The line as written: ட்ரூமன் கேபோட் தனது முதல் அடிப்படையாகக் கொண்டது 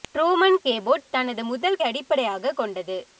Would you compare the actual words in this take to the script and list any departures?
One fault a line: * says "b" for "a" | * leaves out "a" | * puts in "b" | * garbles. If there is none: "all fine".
all fine